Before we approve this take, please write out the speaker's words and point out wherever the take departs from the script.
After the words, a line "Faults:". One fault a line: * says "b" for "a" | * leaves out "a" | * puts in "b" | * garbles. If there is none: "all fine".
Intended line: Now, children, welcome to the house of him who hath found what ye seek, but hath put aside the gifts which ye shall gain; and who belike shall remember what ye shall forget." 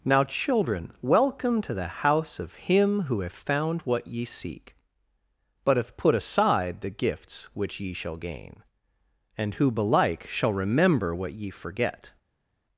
Now, children, welcome to the house of him who hath found what ye seek, but hath put aside the gifts which ye shall gain; and who belike shall remember what ye forget."
Faults:
* leaves out "shall"